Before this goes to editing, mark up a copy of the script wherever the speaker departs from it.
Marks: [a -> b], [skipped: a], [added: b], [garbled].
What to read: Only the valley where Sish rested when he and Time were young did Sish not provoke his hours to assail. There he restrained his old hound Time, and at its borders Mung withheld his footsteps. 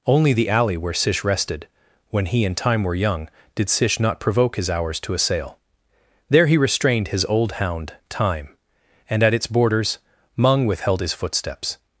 Only the [valley -> alley] where Sish rested when he and Time were young did Sish not provoke his hours to assail. There he restrained his old hound Time, and at its borders Mung withheld his footsteps.